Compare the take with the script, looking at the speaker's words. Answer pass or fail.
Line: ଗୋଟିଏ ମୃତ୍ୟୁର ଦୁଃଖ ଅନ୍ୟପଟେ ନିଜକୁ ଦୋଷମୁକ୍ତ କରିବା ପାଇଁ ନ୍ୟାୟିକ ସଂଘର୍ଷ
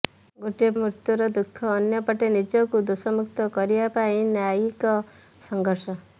pass